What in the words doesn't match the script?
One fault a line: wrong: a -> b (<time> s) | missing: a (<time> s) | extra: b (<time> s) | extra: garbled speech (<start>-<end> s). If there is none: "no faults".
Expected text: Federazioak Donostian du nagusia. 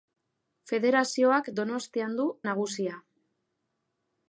no faults